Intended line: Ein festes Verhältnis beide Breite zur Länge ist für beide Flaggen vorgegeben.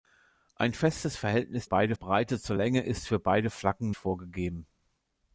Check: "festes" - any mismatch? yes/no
no